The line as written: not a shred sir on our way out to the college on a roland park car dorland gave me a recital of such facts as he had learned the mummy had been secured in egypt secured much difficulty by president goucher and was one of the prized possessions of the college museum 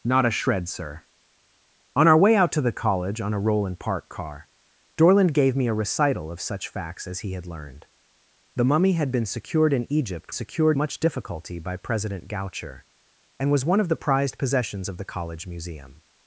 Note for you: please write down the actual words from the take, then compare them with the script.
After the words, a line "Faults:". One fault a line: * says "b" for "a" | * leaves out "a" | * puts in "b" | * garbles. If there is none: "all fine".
not a shred sir on our way out to the college on a roland park car dorland gave me a recital of such facts as he had learned the mummy had been secured in egypt secured much difficulty by president goucher and was one of the prized possessions of the college museum
Faults:
all fine